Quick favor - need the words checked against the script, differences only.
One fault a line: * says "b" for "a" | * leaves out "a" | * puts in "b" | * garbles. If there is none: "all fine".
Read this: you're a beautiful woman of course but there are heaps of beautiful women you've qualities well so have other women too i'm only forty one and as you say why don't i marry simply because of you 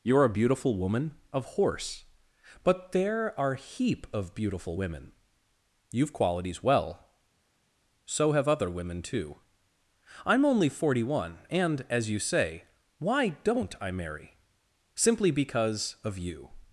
* says "horse" for "course"
* says "heap" for "heaps"